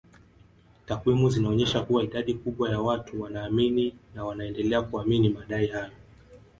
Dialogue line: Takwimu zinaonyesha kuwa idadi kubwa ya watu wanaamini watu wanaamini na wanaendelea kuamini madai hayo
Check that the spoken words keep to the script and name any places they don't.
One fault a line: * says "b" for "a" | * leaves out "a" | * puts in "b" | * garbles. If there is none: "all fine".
* leaves out "watu wanaamini"